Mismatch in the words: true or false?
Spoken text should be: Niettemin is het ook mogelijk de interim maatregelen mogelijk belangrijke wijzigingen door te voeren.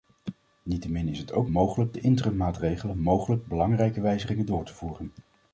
false